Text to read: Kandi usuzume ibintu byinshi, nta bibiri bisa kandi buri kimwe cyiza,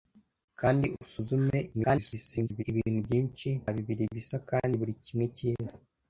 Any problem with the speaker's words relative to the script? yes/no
yes